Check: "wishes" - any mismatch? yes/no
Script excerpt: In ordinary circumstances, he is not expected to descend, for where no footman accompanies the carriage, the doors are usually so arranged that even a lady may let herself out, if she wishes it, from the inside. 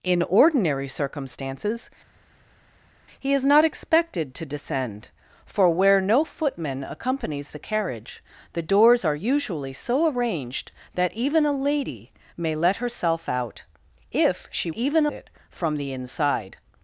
yes